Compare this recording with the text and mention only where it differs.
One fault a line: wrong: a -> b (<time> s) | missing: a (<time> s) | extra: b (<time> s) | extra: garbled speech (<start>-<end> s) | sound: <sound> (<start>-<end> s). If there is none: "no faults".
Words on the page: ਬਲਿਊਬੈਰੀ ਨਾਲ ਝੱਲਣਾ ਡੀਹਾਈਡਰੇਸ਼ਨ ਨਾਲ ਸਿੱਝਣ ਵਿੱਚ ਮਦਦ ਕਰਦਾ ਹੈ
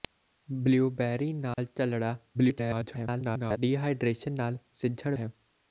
sound: dropout (1.5-1.6 s)
extra: garbled speech (2.3-3.6 s)
missing: ਵਿੱਚ ਮਦਦ ਕਰਦਾ (5.2 s)